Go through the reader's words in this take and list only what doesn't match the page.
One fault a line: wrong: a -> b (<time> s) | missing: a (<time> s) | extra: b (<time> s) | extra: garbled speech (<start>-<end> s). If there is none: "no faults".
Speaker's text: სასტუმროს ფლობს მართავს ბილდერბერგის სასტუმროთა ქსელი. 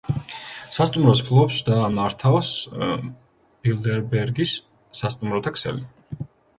extra: და (1.7 s)